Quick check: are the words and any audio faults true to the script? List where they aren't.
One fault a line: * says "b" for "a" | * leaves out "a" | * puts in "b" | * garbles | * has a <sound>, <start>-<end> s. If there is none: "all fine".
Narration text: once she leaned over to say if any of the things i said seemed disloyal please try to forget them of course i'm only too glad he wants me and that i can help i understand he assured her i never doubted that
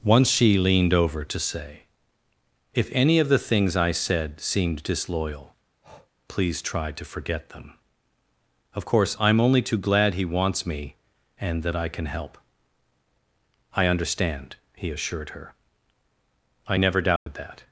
* has a breath, 5.8-6.1 s
* has a dropout, 17.2-17.3 s